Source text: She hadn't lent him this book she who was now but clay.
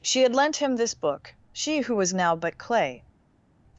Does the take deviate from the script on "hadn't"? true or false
true